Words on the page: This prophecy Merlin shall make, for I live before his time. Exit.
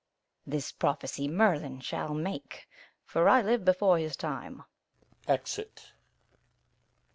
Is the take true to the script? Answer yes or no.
yes